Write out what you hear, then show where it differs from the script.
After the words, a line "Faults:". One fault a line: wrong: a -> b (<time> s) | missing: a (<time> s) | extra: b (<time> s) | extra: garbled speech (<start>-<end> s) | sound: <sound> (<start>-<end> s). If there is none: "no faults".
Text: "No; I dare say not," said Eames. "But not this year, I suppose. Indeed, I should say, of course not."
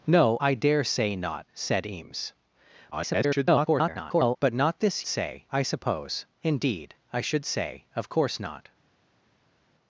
"No; I dare say not," said Eames. [garbled] "But not this say, I suppose. Indeed, I should say, of course not."
Faults:
extra: garbled speech (2.9-4.4 s)
wrong: year -> say (5.1 s)